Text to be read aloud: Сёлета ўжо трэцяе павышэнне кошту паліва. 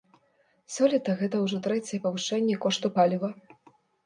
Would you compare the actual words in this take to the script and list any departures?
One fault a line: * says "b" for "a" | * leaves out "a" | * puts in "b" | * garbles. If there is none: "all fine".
* puts in "гэта"